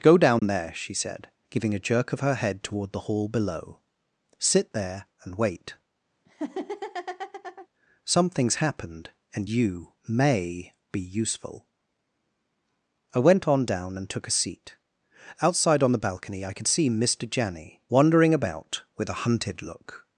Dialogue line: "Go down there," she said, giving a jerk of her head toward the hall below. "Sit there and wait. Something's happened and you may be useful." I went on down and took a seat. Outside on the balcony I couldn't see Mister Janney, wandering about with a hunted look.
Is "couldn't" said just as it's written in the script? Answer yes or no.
no